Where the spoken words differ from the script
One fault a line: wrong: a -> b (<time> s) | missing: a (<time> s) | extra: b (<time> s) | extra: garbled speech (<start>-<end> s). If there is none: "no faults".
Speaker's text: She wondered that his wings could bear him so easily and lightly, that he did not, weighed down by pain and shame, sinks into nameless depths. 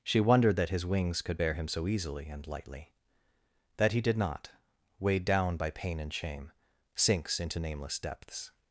no faults